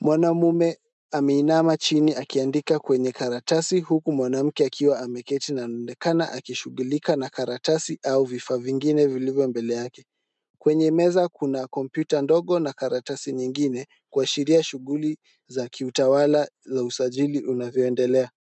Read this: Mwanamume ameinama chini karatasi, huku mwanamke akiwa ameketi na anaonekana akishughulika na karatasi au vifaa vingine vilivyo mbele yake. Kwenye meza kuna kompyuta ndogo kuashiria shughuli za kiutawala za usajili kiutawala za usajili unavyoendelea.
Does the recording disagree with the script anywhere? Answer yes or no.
yes